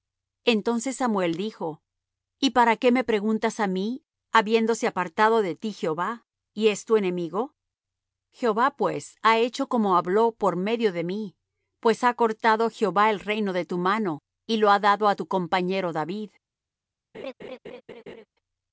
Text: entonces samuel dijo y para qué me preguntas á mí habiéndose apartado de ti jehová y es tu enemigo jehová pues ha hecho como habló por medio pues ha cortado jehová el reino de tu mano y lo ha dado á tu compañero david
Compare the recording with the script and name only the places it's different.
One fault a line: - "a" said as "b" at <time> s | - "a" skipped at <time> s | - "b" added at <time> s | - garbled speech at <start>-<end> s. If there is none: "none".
- "de mí" added at 10.9 s